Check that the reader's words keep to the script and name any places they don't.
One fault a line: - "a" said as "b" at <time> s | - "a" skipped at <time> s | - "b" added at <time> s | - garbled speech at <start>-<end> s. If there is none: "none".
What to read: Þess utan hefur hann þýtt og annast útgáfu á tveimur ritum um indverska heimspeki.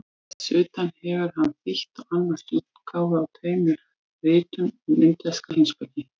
none